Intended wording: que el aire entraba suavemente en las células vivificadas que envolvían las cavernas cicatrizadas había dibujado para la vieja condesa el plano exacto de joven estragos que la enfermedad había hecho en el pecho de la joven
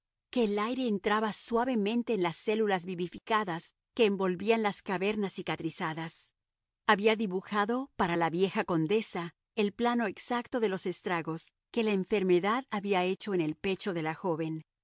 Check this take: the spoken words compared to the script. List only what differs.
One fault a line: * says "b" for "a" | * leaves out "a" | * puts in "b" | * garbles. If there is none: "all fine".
* says "los" for "joven"